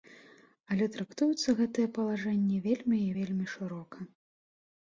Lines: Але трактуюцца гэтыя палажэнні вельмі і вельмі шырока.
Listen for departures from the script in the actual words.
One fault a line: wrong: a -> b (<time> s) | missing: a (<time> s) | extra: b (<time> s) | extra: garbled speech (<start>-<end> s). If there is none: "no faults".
no faults